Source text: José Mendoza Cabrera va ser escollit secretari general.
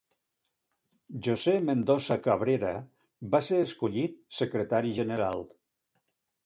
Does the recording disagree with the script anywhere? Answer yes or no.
no